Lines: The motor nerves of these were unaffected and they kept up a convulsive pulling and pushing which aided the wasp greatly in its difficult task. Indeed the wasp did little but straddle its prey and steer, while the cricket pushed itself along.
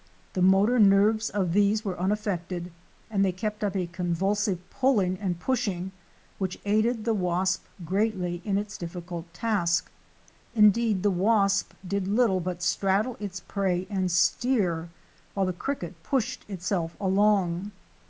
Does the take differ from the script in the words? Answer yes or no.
no